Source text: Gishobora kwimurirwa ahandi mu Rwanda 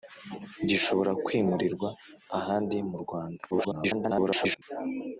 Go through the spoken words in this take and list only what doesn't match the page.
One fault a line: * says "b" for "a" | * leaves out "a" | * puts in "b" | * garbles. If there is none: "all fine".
* garbles